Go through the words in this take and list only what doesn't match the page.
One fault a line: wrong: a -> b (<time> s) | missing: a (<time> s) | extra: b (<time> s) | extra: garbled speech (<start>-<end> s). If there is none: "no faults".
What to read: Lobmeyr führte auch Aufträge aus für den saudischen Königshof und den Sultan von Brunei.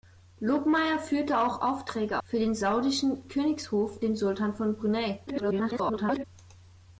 missing: aus (2.2 s)
missing: und (4.0 s)
extra: garbled speech (5.3-6.2 s)